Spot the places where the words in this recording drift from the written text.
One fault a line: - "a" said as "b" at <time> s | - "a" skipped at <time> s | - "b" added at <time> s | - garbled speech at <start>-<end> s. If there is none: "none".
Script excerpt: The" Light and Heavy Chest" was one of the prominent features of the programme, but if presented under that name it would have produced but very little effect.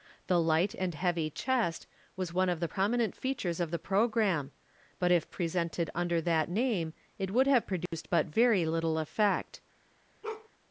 none